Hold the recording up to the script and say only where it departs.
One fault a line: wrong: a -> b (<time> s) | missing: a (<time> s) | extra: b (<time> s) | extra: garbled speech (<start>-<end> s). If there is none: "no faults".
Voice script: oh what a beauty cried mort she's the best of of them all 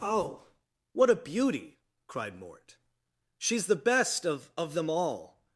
no faults